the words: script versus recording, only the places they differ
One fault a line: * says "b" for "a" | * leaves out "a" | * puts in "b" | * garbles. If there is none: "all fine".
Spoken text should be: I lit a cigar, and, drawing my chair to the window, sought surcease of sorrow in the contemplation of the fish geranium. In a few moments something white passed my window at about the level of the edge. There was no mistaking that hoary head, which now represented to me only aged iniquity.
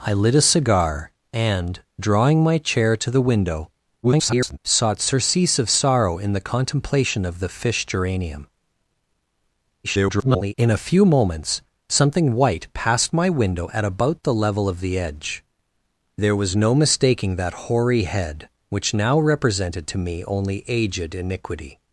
* garbles
* garbles